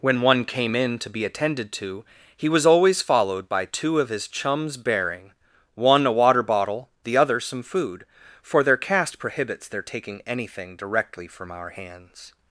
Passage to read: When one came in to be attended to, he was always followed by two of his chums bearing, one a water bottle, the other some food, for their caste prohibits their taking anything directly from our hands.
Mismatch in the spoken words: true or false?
false